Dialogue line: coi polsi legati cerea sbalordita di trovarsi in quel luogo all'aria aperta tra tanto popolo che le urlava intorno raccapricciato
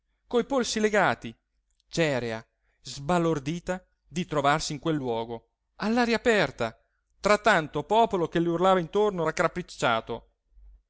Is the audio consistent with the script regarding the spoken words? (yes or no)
yes